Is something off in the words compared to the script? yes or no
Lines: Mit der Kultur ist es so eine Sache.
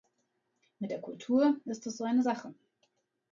no